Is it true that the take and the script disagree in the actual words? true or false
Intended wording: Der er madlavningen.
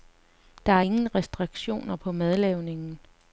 true